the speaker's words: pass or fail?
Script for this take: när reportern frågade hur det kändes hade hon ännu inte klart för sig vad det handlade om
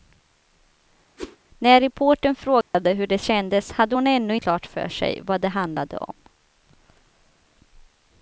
fail